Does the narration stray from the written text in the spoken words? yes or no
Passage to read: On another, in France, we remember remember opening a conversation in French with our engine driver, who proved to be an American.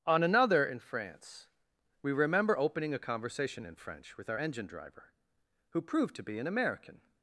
yes